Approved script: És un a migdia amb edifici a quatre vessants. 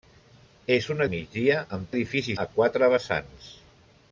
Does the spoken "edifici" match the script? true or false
true